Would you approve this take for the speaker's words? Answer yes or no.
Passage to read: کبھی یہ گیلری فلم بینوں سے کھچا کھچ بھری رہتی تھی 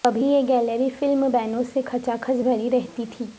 yes